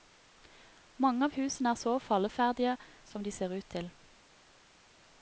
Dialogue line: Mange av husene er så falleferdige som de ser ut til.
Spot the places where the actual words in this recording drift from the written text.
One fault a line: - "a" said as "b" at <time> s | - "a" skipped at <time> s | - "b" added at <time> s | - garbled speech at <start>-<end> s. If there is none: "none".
none